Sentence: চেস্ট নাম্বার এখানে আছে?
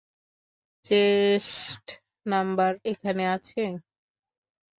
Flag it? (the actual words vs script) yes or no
no